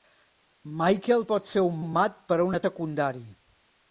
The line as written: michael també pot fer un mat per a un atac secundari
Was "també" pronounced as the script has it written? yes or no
no